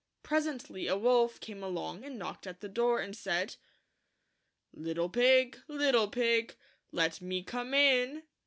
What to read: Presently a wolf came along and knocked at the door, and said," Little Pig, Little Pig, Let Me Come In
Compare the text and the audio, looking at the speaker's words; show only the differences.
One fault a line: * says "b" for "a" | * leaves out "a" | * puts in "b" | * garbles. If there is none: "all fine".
all fine